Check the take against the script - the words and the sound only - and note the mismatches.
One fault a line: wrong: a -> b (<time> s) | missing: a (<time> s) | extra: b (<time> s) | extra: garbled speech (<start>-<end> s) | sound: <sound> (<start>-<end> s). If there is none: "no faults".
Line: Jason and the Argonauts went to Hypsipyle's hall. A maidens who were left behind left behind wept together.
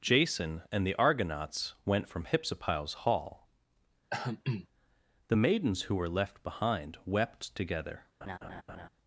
wrong: to -> from (2.1 s)
sound: throat clearing (4.1-4.7 s)
wrong: A -> The (5.3 s)
missing: left behind (7.0 s)
sound: laugh (8.2-8.9 s)